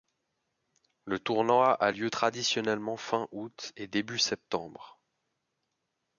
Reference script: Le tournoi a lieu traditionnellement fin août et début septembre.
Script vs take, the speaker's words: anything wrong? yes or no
no